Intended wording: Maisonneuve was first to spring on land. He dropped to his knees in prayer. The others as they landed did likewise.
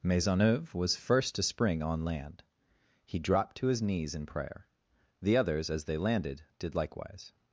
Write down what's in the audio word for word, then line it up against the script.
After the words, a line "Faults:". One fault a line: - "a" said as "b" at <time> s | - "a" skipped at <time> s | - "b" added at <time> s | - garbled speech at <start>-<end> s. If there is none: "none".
Maisonneuve was first to spring on land. He dropped to his knees in prayer. The others as they landed did likewise.
Faults:
none